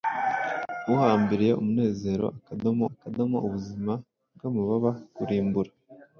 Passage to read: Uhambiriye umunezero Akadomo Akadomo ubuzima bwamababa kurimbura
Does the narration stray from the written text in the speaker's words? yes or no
no